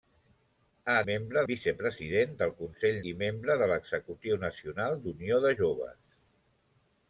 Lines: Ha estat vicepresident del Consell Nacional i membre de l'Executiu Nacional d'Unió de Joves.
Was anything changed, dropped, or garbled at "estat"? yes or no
yes